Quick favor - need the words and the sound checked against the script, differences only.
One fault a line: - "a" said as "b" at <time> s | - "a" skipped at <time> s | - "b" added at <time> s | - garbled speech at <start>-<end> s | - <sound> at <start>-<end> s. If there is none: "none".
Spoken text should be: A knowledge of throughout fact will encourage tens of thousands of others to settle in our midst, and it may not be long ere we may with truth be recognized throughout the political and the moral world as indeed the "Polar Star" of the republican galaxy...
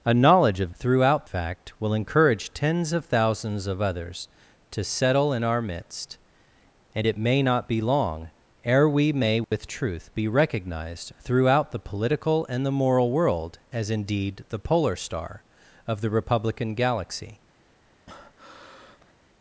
- dropout at 9.4-9.5 s
- breath at 18.1-19.1 s